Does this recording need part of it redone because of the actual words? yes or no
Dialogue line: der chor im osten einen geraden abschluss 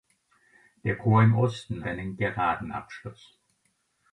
no